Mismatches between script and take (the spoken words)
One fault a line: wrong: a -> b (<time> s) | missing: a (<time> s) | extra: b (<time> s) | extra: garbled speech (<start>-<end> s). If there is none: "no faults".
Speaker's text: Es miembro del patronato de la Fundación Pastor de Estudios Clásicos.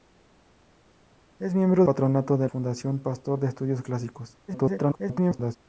missing: del (1.9 s)
missing: la (2.5 s)
extra: garbled speech (4.5-5.6 s)